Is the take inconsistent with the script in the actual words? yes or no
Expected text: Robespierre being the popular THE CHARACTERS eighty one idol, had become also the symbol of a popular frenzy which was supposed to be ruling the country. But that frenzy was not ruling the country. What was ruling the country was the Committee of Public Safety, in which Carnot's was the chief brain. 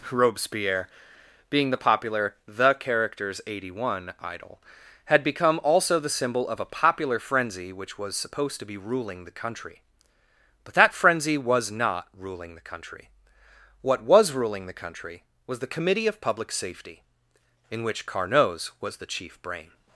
no